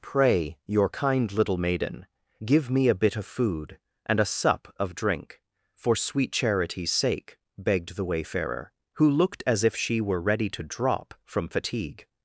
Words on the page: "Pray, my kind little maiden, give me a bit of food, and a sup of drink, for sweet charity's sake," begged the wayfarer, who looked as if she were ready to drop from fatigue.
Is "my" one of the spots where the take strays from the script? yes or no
yes